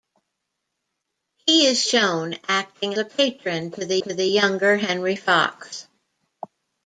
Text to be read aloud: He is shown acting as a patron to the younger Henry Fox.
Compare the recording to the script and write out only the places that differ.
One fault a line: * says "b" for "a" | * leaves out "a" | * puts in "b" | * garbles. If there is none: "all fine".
* leaves out "as"
* puts in "to the"